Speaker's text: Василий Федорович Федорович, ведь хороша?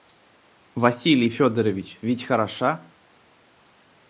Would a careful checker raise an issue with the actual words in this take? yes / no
yes